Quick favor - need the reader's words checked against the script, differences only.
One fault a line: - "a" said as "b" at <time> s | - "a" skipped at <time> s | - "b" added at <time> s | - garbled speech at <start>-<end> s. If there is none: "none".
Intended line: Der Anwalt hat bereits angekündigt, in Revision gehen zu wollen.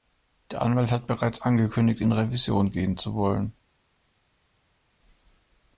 none